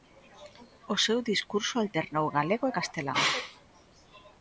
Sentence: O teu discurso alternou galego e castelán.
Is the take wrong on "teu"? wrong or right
wrong